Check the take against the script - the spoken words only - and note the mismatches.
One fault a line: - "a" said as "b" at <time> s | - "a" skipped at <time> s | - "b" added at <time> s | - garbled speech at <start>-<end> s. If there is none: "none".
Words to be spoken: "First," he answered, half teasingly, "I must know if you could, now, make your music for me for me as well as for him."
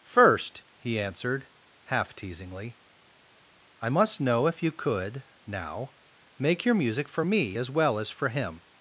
- "for me" skipped at 7.6 s